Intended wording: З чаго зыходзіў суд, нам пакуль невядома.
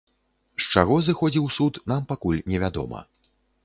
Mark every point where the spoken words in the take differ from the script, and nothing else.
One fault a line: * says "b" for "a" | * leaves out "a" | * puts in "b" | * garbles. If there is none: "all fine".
all fine